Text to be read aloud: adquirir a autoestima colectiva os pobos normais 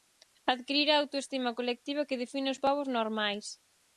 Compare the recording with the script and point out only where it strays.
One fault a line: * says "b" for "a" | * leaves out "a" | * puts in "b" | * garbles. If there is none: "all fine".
* puts in "que define"